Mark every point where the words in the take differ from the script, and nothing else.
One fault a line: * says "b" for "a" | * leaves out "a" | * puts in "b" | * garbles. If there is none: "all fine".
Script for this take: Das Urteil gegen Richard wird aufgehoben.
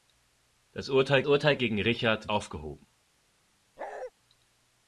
* puts in "Urteil"
* leaves out "wird"